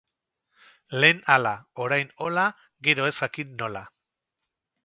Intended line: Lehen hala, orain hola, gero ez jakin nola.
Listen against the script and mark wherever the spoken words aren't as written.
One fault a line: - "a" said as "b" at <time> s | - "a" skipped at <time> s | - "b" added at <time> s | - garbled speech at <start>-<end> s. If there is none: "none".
none